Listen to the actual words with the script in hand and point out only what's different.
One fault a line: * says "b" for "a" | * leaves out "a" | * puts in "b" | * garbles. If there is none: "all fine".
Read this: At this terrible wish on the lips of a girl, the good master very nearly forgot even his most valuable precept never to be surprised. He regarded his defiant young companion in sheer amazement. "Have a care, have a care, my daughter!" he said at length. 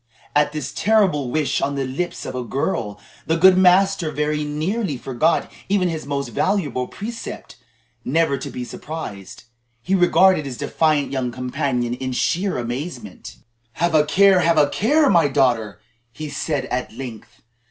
all fine